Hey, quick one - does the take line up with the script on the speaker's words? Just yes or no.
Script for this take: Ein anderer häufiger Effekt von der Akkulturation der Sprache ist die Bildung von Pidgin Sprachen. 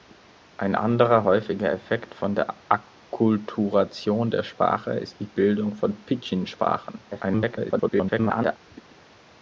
no